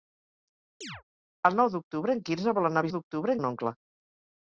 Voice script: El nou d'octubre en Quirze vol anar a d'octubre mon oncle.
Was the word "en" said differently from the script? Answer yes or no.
no